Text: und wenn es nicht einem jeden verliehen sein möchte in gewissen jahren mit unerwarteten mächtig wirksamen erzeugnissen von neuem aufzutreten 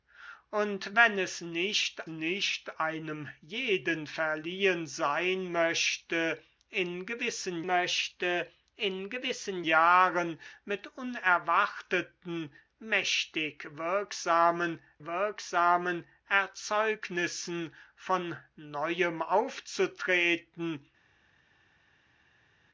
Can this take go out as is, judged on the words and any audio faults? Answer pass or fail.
fail